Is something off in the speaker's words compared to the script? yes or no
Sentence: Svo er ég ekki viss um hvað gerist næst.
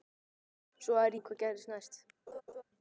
yes